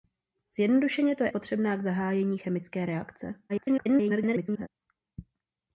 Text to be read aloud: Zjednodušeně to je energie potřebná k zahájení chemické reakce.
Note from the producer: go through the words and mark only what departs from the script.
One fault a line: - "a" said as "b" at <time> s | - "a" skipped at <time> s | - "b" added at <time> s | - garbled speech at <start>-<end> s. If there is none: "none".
- "energie" skipped at 1.3 s
- garbled speech at 3.5-4.7 s